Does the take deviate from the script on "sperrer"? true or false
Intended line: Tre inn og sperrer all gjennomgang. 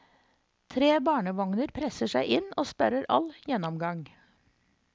false